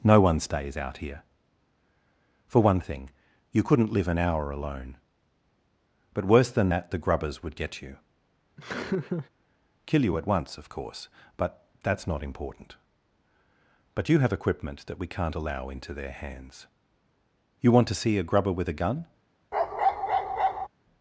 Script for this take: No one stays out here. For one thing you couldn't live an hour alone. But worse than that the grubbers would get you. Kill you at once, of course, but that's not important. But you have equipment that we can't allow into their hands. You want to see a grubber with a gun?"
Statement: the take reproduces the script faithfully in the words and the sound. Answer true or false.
false